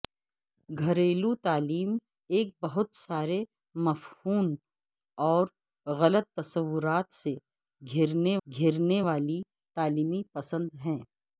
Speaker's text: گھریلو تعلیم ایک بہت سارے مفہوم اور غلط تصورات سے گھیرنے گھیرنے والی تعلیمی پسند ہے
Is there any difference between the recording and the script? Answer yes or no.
no